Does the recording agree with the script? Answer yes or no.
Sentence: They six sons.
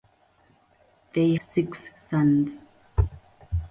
yes